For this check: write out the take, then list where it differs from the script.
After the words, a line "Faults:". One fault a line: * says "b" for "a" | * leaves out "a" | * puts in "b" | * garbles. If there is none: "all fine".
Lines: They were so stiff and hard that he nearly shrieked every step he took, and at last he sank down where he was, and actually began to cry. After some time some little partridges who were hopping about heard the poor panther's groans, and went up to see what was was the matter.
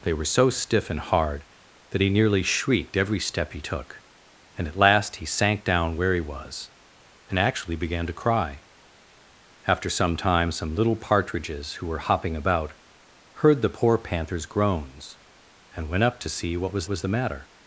They were so stiff and hard that he nearly shrieked every step he took, and at last he sank down where he was, and actually began to cry. After some time some little partridges who were hopping about heard the poor panther's groans, and went up to see what was was the matter.
Faults:
all fine